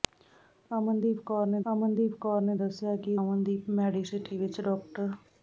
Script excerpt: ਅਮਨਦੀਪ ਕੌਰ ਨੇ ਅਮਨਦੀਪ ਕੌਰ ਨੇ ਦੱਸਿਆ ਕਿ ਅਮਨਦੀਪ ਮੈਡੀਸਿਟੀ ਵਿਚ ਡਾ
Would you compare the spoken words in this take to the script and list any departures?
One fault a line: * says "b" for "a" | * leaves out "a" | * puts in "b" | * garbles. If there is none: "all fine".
all fine